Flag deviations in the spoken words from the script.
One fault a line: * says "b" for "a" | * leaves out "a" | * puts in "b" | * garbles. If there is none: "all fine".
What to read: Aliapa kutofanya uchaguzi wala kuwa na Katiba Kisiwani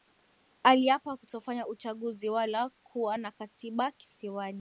all fine